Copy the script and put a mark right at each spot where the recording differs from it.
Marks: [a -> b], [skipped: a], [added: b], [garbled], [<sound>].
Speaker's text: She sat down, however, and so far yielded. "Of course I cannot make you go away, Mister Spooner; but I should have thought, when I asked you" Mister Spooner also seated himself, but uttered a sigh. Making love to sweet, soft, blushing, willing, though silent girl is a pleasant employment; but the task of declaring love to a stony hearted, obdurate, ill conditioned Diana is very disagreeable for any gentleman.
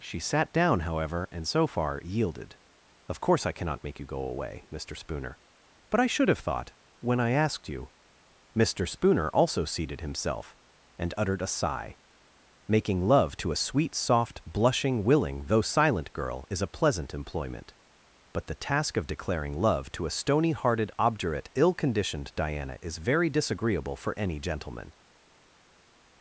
She sat down, however, and so far yielded. "Of course I cannot make you go away, Mister Spooner; but I should have thought, when I asked you" Mister Spooner also seated himself, [but -> and] uttered a sigh. Making love to [added: a] sweet, soft, blushing, willing, though silent girl is a pleasant employment; but the task of declaring love to a stony hearted, obdurate, ill conditioned Diana is very disagreeable for any gentleman.